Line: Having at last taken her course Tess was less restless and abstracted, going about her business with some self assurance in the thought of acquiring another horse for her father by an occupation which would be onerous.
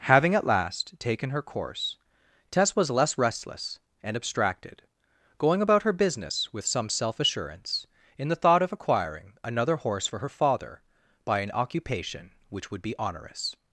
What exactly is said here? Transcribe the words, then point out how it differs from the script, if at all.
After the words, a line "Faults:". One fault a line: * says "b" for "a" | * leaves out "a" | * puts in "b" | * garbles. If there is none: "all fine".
Having at last taken her course Tess was less restless and abstracted, going about her business with some self assurance in the thought of acquiring another horse for her father by an occupation which would be onerous.
Faults:
all fine